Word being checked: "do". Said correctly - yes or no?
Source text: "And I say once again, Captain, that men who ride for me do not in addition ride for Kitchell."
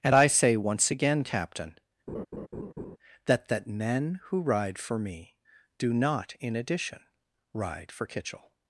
yes